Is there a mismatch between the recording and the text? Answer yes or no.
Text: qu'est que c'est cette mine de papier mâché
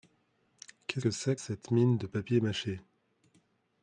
no